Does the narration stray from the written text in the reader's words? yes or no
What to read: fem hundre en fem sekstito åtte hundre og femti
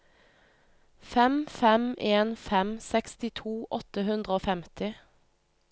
yes